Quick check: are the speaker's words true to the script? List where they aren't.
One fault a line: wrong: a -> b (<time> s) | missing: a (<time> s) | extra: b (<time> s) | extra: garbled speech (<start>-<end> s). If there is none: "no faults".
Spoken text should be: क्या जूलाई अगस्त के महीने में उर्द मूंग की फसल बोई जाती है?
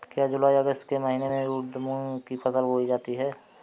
no faults